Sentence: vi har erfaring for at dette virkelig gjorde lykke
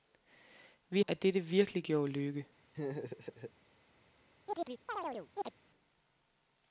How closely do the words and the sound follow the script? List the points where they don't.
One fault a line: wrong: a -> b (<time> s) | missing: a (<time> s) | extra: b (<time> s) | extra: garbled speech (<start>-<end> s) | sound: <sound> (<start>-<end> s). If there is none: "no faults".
missing: har erfaring for (1.0 s)
sound: laugh (2.7-3.5 s)
sound: chirp (4.5-5.5 s)